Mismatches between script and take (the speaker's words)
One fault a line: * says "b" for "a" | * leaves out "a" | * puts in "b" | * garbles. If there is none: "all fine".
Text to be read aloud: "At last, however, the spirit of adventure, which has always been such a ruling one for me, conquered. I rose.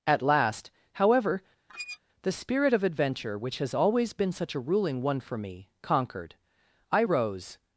all fine